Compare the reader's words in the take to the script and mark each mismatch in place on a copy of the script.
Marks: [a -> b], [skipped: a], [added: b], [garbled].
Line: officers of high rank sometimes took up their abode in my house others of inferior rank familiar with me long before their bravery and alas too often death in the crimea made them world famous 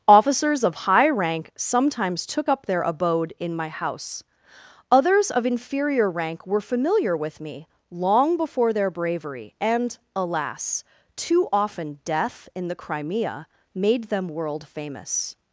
officers of high rank sometimes took up their abode in my house others of inferior rank [added: were] familiar with me long before their bravery and alas too often death in the crimea made them world famous